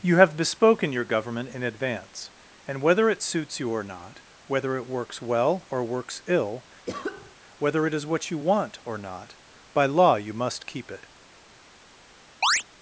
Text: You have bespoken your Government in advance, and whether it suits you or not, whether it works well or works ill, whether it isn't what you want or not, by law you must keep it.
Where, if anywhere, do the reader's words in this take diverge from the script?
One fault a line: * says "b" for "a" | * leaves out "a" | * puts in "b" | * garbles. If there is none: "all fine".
* says "is" for "isn't"